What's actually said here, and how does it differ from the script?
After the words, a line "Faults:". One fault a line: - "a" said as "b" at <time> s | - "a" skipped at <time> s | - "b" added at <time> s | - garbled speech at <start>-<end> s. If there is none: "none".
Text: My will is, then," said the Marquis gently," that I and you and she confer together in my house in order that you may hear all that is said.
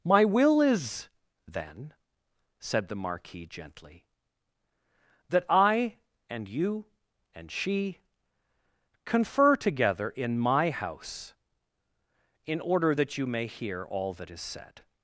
My will is, then," said the Marquis gently," that I and you and she confer together in my house in order that you may hear all that is said.
Faults:
none